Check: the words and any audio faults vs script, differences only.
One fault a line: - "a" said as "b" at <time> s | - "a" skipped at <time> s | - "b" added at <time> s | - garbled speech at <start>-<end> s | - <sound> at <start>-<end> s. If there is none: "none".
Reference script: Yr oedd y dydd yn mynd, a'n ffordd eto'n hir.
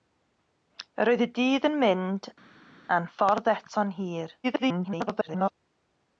- garbled speech at 4.4-5.5 s